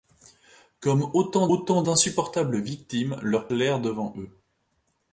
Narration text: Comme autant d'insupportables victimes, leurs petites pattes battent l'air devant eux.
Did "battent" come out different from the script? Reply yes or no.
yes